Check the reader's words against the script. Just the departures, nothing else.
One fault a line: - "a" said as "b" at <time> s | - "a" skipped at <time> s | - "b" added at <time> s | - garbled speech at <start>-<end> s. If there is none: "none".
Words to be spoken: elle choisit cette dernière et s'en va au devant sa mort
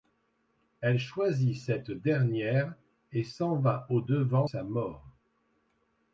none